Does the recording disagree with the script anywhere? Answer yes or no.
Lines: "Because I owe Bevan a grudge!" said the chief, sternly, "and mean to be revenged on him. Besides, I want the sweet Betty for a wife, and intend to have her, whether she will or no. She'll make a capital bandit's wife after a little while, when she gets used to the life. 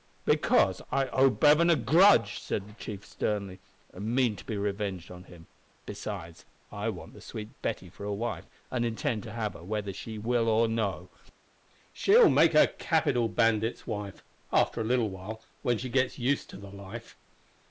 no